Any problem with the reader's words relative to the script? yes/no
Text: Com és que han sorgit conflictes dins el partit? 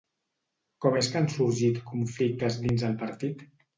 no